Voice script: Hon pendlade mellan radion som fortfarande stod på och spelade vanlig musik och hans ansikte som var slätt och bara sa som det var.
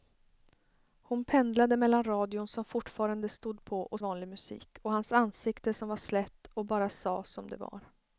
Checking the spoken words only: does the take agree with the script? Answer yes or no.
no